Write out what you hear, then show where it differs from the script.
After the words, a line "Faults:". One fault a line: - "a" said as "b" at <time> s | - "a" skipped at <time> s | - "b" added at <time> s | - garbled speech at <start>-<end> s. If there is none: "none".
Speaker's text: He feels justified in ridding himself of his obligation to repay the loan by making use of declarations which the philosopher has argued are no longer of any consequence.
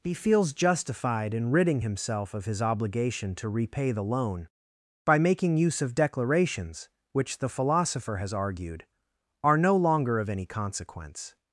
He feels justified in ridding himself of his obligation to repay the loan by making use of declarations which the philosopher has argued are no longer of any consequence.
Faults:
none